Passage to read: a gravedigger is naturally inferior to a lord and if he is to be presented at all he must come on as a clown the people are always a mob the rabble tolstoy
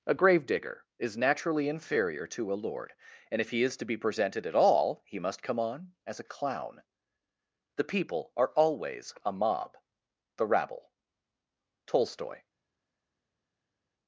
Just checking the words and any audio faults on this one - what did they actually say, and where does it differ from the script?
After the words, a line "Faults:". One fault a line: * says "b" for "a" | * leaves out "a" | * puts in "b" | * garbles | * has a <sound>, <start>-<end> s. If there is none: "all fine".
a gravedigger is naturally inferior to a lord and if he is to be presented at all he must come on as a clown the people are always a mob the rabble tolstoy
Faults:
all fine